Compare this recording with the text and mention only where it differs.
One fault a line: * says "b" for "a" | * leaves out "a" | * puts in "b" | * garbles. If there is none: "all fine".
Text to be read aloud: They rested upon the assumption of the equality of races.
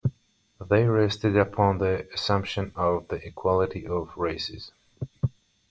all fine